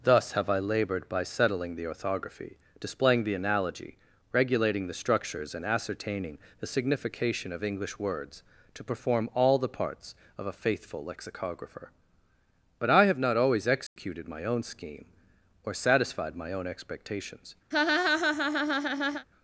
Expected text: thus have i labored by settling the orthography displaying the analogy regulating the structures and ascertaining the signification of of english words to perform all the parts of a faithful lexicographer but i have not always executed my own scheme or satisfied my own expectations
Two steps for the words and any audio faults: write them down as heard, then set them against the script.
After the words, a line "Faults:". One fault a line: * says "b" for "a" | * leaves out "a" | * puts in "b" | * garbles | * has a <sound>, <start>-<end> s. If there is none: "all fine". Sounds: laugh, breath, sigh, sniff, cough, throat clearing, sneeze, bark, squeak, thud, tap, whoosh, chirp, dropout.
thus have i labored by settling the orthography displaying the analogy regulating the structures and ascertaining the signification of english words to perform all the parts of a faithful lexicographer but i have not always executed my own scheme or satisfied my own expectations
Faults:
* leaves out "of"
* has a dropout, 13.9-14.0 s
* has a laugh, 17.7-19.3 s